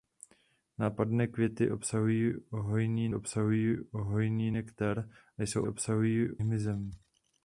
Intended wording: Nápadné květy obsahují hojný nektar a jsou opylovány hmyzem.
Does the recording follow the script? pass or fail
fail